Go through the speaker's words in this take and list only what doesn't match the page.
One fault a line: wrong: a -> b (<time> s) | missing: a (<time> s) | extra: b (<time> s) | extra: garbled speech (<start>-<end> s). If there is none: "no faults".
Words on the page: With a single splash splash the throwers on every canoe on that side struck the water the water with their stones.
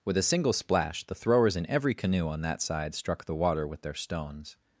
missing: splash (1.0 s)
wrong: on -> in (1.6 s)
missing: the water (3.7 s)